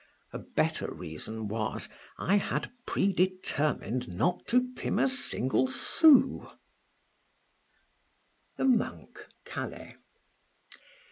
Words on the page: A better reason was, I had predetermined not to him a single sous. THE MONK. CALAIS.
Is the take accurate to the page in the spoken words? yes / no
yes